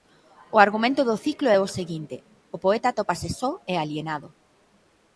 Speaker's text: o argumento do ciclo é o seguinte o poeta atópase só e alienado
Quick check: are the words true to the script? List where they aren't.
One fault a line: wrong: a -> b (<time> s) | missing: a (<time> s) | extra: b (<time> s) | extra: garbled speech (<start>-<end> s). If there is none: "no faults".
no faults